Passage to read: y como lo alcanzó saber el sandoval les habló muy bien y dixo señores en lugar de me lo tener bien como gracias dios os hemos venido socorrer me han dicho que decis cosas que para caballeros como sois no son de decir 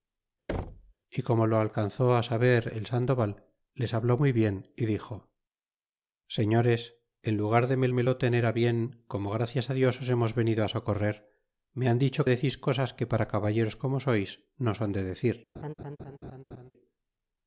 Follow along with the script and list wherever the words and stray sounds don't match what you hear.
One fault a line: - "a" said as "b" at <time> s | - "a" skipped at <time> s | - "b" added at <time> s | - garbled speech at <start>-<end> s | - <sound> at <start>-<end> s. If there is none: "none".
- thud at 0.5-0.9 s
- "me" added at 7.9 s
- "que" skipped at 12.2 s
- laugh at 15.5-16.7 s